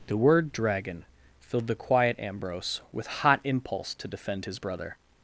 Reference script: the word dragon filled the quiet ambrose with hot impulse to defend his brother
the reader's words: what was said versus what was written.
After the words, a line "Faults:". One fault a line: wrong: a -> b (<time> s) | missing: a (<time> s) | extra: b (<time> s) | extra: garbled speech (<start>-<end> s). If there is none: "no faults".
the word dragon filled the quiet ambrose with hot impulse to defend his brother
Faults:
no faults